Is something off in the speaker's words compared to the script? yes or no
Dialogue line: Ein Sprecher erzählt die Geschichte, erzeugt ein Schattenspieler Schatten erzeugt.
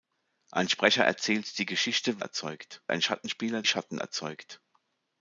no